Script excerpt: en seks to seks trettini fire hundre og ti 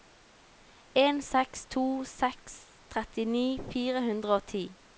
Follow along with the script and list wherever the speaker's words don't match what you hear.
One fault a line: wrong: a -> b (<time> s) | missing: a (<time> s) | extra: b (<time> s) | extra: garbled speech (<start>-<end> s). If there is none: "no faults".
no faults